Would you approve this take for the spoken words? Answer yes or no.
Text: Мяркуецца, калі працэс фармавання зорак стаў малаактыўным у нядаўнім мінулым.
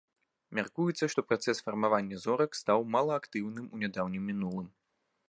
no